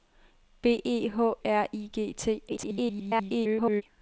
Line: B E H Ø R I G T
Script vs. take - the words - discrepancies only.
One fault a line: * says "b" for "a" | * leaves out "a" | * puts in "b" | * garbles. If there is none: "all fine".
* leaves out "Ø"
* garbles